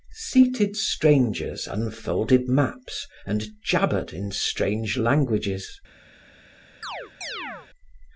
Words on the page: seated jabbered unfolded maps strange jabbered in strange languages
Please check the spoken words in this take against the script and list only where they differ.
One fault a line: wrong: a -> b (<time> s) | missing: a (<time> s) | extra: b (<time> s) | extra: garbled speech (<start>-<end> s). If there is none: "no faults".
wrong: jabbered -> strangers (0.8 s)
wrong: strange -> and (3.3 s)